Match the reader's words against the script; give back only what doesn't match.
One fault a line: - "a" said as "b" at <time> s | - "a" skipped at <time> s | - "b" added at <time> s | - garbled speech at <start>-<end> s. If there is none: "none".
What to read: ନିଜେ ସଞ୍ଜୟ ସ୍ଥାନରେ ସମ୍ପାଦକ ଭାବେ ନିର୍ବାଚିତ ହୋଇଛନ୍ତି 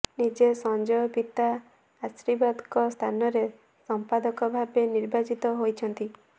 - "ପିତା ଆଶୀର୍ବାଦଙ୍କ" added at 1.1 s